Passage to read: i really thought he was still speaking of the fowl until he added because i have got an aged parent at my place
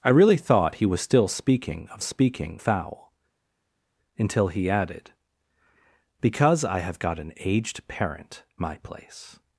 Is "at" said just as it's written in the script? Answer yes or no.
no